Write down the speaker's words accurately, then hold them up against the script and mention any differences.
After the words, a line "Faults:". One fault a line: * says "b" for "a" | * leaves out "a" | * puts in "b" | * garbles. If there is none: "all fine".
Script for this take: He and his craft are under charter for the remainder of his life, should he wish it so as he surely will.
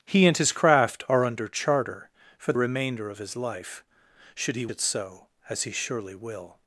He and his craft are under charter for remainder of his life, should he it so as he surely will.
Faults:
* leaves out "the"
* leaves out "wish"